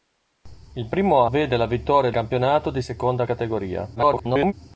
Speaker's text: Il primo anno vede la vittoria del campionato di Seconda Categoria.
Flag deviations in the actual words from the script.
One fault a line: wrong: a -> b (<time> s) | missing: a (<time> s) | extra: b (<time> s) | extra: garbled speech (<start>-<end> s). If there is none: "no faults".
missing: anno (1.2 s)
missing: del (2.1 s)
extra: garbled speech (4.0-4.5 s)